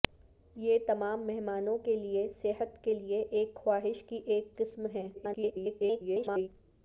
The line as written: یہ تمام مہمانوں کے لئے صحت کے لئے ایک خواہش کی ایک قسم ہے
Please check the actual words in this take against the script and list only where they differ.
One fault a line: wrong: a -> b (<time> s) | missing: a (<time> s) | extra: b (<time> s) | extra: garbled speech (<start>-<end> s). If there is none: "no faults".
extra: garbled speech (5.1-6.5 s)